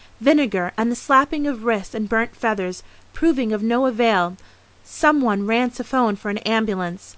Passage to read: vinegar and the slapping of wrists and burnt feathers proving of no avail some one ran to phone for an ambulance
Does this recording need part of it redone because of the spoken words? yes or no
no